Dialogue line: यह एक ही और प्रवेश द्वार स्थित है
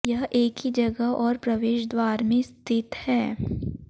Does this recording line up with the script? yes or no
no